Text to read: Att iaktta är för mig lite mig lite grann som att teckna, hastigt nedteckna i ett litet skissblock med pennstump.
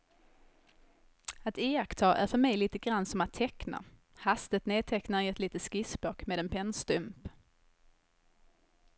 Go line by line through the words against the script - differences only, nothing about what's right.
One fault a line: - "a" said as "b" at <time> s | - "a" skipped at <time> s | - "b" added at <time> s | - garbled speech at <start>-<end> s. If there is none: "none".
- "mig lite" skipped at 2.8 s
- "en" added at 6.4 s